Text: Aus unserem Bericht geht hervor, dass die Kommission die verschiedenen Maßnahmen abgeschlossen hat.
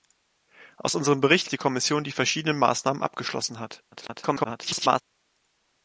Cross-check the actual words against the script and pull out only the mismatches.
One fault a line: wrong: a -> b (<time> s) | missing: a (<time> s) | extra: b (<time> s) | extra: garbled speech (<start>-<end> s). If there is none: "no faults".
missing: geht hervor dass (1.5 s)
extra: garbled speech (3.9-5.0 s)